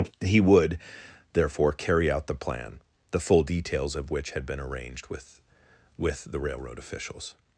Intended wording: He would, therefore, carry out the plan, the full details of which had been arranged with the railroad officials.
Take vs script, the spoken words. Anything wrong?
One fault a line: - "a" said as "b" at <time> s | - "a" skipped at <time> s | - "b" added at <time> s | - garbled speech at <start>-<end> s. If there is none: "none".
- "with" added at 6.0 s